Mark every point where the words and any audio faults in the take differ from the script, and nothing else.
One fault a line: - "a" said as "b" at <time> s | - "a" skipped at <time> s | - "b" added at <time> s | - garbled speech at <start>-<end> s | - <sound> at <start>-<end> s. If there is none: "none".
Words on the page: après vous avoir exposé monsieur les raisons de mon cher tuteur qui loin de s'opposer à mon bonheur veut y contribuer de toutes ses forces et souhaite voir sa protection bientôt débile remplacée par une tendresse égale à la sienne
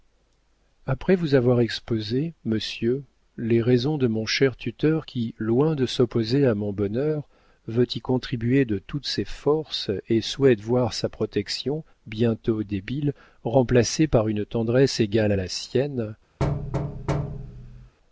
- thud at 16.4-17.9 s